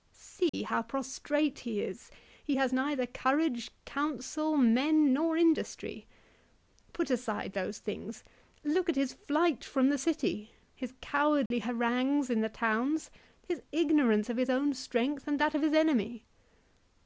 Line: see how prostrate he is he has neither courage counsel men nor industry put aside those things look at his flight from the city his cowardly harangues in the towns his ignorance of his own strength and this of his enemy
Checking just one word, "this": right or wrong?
wrong